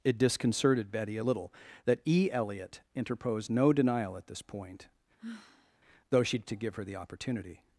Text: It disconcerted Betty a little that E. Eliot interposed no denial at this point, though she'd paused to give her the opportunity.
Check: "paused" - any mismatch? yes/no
yes